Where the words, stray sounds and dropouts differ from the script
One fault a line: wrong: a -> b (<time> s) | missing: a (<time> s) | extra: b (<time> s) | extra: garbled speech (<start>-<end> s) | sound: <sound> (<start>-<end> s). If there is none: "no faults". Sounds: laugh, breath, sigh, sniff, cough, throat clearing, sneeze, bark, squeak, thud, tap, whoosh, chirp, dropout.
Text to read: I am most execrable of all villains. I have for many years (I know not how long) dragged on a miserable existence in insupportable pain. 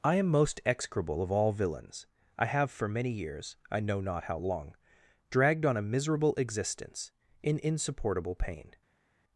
no faults